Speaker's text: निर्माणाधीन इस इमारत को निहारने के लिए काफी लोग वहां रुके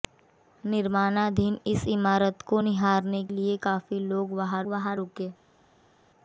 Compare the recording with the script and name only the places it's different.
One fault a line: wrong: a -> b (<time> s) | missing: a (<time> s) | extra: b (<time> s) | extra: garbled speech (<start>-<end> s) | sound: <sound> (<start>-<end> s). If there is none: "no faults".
missing: के (3.2 s)
extra: वहां (4.7 s)